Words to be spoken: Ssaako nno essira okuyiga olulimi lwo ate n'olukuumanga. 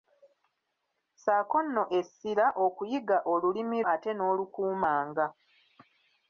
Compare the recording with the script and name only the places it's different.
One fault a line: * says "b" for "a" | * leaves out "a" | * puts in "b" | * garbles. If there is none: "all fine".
* leaves out "lwo"